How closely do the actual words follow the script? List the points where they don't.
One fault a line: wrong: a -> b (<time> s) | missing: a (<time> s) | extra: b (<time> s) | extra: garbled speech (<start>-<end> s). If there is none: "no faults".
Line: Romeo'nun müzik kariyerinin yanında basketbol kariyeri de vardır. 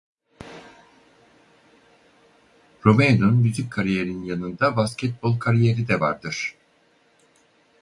no faults